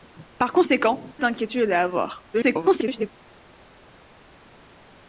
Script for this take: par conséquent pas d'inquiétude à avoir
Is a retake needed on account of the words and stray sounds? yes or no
yes